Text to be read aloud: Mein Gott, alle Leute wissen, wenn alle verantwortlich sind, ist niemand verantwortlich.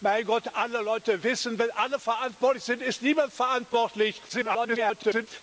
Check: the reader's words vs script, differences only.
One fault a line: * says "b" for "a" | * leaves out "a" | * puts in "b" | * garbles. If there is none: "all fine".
* garbles